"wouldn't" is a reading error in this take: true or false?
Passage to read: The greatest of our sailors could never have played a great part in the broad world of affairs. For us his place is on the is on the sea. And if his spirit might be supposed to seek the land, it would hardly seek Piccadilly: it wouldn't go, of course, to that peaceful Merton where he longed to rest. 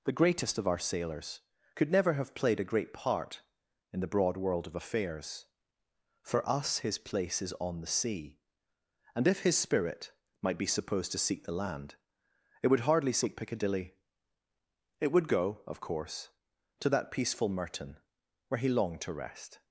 true